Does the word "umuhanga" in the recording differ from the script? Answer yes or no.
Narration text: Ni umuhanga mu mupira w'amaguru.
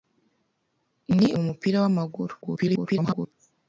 yes